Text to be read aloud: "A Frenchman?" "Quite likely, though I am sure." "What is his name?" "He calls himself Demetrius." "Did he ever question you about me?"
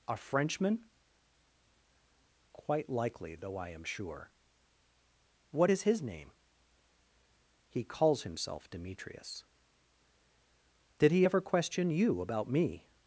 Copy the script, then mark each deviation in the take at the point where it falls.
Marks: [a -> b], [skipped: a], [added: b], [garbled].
"A Frenchman?" "Quite likely, though I am sure." "What is his name?" "He calls himself Demetrius." "Did he ever question you about me?"